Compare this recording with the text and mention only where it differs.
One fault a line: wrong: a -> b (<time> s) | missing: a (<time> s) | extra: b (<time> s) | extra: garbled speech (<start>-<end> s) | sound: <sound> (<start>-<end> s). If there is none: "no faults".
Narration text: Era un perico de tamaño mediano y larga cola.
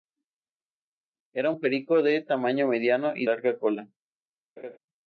sound: laugh (4.6-4.8 s)